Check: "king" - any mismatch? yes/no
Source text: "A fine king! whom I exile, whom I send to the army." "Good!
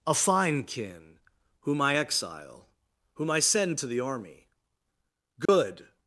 yes